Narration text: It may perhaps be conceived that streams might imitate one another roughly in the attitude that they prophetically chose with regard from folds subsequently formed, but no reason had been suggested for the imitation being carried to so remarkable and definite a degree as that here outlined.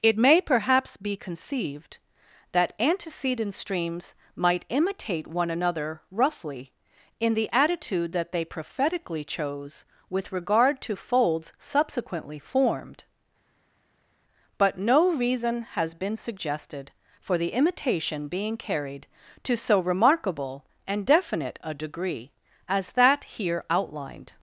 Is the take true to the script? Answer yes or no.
no